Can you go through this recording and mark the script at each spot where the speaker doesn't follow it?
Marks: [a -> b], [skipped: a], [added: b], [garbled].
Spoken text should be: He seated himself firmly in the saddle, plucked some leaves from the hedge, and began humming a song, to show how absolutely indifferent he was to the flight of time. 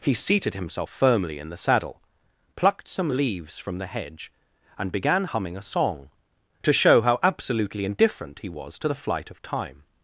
He seated himself firmly in the saddle, plucked some leaves from the hedge, and began humming a song, to show how absolutely indifferent he was to the flight of time.